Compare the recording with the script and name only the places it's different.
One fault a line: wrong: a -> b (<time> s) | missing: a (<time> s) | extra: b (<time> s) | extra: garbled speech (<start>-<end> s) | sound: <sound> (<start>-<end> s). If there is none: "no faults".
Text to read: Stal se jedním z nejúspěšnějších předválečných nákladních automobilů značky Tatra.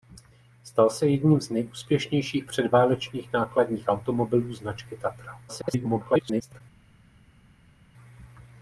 extra: garbled speech (5.5-6.6 s)